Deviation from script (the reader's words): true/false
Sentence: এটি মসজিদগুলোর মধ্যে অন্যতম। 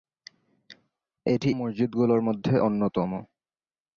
false